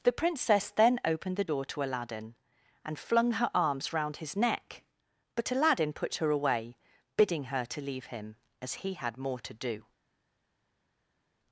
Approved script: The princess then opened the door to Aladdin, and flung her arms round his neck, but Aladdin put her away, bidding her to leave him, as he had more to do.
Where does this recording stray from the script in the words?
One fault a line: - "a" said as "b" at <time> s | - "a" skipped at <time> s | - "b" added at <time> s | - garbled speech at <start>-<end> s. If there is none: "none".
none